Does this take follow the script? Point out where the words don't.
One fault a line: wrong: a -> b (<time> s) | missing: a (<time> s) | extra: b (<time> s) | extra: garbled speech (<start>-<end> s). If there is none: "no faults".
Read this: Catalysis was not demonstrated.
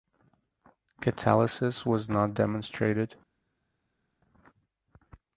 no faults